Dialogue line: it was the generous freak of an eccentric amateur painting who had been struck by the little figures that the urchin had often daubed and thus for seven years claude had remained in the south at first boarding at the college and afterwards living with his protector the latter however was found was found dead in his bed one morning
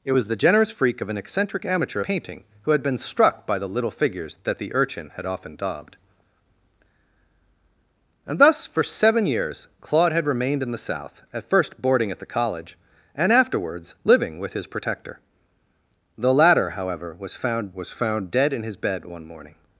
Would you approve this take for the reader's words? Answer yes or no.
yes